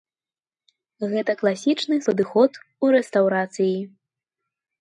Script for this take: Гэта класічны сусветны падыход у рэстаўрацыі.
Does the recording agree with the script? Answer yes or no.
no